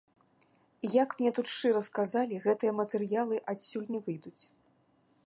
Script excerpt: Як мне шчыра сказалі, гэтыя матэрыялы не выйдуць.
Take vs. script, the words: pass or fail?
fail